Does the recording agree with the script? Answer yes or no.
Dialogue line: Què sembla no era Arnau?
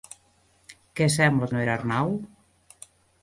yes